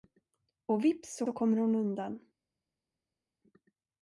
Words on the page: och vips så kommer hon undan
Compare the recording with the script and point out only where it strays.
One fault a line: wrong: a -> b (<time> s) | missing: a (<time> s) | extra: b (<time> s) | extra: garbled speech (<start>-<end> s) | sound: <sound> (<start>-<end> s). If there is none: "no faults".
extra: så (1.2 s)